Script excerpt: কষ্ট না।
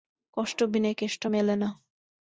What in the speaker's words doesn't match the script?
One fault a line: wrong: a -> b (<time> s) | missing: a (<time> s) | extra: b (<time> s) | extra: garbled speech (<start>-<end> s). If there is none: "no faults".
extra: বিনে কেষ্ট মেলে (0.7 s)